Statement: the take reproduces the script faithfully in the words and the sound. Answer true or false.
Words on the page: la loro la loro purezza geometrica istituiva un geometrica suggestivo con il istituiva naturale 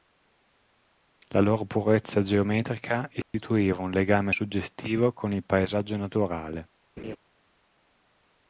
false